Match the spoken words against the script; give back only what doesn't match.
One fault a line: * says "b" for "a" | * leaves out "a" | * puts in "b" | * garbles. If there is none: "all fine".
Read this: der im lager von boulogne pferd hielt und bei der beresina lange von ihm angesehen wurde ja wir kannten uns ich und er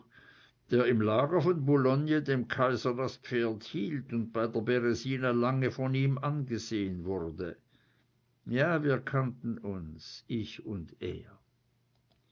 * puts in "dem kaiser das"